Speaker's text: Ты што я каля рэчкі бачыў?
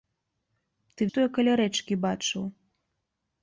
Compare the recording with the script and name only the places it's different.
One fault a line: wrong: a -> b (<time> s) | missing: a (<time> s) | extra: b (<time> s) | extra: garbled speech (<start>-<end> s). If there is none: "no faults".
no faults